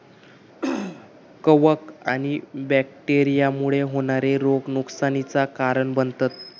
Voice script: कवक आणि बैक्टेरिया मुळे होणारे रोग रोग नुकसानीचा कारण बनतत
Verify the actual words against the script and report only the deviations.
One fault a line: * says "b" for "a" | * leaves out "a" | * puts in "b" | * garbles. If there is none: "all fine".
* leaves out "रोग"